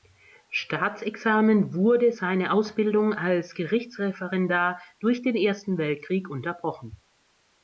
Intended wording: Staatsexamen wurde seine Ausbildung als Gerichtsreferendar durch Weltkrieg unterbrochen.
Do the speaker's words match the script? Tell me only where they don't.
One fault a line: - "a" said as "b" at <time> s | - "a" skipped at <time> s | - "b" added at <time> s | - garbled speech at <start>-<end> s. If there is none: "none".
- "den Ersten" added at 5.2 s